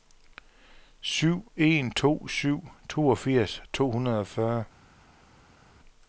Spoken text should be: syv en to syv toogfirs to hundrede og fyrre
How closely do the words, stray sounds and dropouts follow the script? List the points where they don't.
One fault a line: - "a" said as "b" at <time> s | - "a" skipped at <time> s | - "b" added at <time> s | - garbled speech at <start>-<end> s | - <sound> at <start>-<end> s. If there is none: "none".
none